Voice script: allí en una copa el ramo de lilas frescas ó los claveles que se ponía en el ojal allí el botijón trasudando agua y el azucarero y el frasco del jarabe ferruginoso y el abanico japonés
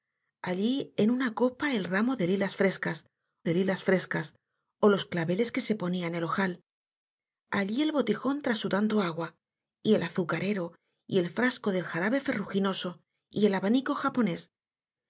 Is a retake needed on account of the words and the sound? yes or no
yes